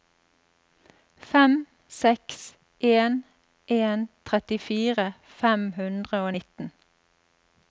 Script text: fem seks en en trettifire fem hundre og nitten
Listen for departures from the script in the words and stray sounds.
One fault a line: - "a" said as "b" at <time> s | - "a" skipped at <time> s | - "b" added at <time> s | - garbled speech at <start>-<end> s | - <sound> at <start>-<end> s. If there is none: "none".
none